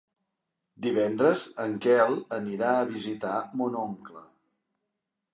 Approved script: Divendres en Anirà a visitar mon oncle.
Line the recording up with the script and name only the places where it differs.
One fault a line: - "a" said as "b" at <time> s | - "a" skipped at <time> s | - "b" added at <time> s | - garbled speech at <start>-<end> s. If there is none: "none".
- "Quel" added at 1.8 s